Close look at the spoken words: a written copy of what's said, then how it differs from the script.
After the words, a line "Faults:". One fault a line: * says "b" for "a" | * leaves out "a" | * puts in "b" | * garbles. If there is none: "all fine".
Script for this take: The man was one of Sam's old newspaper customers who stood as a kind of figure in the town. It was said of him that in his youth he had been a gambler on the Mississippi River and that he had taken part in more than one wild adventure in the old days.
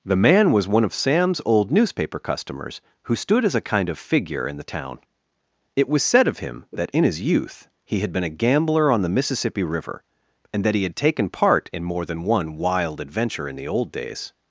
The man was one of Sam's old newspaper customers who stood as a kind of figure in the town. It was said of him that in his youth he had been a gambler on the Mississippi River and that he had taken part in more than one wild adventure in the old days.
Faults:
all fine